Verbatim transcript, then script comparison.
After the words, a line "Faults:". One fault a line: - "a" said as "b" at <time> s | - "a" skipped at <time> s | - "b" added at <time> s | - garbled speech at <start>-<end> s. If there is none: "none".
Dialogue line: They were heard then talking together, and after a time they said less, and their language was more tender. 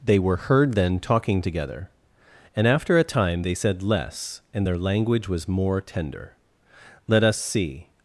They were heard then talking together, and after a time they said less, and their language was more tender. "Let us see
Faults:
- "Let us see" added at 7.1 s